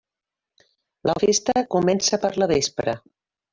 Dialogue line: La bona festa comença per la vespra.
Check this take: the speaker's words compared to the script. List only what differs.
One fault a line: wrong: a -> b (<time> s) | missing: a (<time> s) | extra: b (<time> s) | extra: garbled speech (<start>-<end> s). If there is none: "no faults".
missing: bona (1.1 s)